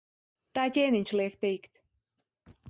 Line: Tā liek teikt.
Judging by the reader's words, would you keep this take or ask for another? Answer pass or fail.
fail